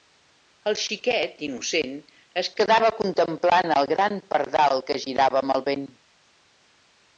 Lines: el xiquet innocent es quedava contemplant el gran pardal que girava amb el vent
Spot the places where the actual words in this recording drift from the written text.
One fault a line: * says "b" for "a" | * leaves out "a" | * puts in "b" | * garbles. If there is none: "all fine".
all fine